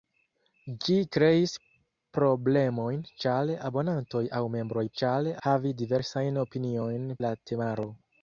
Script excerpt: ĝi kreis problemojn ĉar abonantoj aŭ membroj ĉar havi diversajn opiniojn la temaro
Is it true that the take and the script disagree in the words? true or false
false